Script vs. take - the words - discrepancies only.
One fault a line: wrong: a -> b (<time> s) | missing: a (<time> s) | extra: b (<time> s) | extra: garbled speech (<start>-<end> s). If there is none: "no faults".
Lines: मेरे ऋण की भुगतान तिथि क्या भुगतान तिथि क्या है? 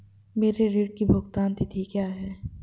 missing: भुगतान तिथि क्या (2.1 s)